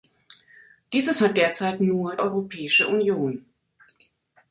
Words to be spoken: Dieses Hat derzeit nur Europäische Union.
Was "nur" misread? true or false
false